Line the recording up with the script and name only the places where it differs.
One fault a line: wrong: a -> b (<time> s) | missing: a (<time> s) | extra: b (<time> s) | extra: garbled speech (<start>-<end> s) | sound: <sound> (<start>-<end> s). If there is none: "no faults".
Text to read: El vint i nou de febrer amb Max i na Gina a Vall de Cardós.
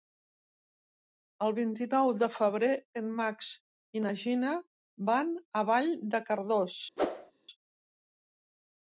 wrong: amb -> en (3.0 s)
extra: van (5.1 s)
sound: whoosh (7.0-7.3 s)